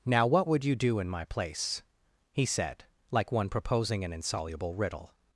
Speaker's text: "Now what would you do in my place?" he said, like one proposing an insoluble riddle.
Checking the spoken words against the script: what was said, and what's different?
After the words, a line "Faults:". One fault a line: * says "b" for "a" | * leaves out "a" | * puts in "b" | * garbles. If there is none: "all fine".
"Now what would you do in my place?" he said, like one proposing an insoluble riddle.
Faults:
all fine